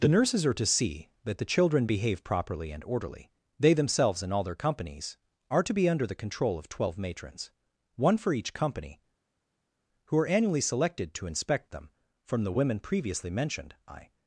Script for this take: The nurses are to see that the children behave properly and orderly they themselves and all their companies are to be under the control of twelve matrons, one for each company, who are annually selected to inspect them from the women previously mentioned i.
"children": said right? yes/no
yes